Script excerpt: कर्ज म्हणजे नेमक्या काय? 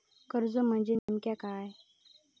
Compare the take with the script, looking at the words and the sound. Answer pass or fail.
fail